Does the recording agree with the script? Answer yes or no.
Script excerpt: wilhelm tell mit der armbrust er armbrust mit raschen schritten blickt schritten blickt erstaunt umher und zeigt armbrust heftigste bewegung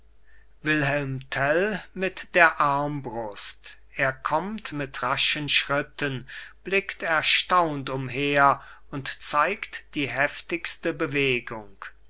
no